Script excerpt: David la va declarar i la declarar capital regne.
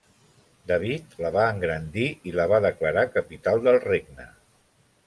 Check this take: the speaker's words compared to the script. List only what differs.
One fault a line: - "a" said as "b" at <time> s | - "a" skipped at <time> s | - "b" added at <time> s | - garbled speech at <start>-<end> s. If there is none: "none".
- "declarar" said as "engrandir" at 1.6 s
- "va" added at 2.5 s
- "del" added at 3.7 s